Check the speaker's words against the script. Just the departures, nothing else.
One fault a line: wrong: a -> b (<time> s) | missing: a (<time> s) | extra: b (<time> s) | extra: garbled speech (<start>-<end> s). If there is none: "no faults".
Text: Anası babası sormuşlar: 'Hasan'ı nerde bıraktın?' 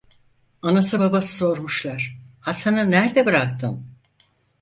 no faults